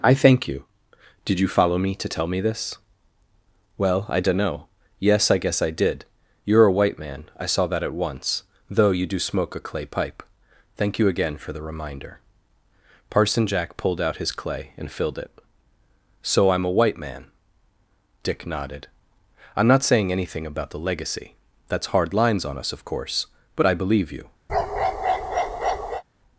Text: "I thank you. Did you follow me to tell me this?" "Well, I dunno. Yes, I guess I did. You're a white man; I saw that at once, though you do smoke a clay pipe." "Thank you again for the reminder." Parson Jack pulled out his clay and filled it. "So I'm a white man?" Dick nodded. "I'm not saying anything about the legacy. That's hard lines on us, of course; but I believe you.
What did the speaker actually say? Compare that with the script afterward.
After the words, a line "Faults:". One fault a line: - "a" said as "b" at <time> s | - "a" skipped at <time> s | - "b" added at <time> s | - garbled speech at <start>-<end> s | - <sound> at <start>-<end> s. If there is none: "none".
"I thank you. Did you follow me to tell me this?" "Well, I dunno. Yes, I guess I did. You're a white man; I saw that at once, though you do smoke a clay pipe." "Thank you again for the reminder." Parson Jack pulled out his clay and filled it. "So I'm a white man?" Dick nodded. "I'm not saying anything about the legacy. That's hard lines on us, of course; but I believe you.
Faults:
- bark at 24.5-26.0 s